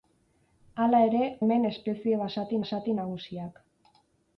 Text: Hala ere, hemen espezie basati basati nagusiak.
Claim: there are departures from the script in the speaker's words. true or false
false